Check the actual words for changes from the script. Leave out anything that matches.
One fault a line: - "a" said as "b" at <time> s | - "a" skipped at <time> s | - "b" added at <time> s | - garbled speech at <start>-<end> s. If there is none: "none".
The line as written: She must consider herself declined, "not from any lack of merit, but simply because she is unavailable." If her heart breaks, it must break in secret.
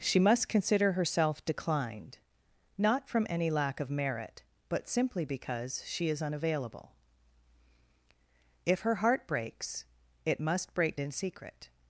none